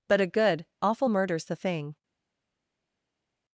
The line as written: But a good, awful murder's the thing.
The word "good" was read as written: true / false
true